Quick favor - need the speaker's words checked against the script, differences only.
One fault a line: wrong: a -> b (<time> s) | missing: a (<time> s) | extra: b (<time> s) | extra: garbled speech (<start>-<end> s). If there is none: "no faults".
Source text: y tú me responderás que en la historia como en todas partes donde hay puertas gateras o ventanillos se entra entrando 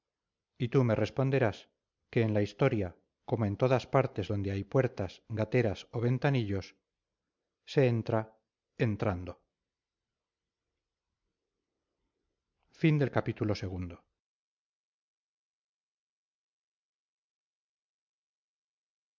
no faults